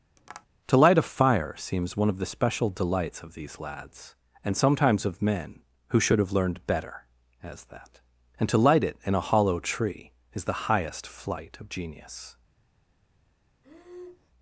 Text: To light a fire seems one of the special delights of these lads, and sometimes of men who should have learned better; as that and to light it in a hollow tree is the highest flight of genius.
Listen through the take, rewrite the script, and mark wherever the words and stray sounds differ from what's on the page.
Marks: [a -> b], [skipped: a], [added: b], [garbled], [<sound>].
[tap] To light a fire seems one of the special delights of these lads, and sometimes of men who should have learned better; as that and to light it in a hollow tree is the highest flight of genius. [breath]